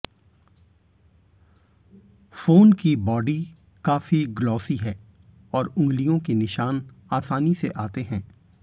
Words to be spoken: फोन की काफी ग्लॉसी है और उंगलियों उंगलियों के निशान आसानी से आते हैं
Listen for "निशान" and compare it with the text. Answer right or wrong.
right